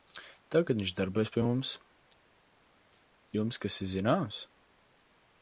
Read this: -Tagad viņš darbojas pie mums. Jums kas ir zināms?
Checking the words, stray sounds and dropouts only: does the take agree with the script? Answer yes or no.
yes